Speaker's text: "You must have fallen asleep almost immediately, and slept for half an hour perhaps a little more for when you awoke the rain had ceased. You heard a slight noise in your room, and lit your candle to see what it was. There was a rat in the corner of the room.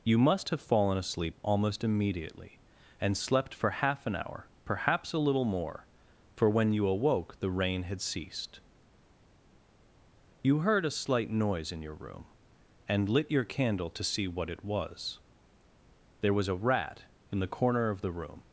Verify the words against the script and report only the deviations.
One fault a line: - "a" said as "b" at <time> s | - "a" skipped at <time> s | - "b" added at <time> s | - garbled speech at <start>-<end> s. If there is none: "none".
none